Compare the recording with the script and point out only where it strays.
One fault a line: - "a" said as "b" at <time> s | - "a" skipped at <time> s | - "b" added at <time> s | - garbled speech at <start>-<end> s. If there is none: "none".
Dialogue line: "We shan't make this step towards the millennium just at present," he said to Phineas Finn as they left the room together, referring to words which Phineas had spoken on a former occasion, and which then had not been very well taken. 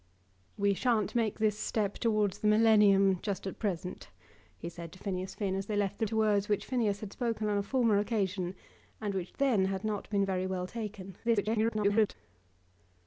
- "room together referring" skipped at 6.1 s
- garbled speech at 11.2-12.1 s